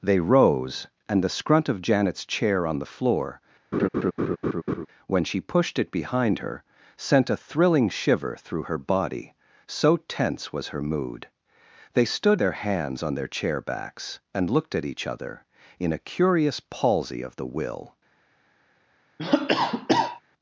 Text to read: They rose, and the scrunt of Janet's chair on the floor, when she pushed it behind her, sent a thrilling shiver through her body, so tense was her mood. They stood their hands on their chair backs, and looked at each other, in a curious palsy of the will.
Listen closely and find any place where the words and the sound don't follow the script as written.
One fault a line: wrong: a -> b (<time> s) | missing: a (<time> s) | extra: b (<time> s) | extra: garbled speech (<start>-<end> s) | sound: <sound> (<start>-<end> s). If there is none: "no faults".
sound: laugh (3.7-4.9 s)
sound: cough (19.2-20.2 s)